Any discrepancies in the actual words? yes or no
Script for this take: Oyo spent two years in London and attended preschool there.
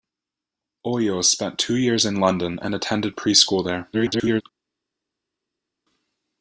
yes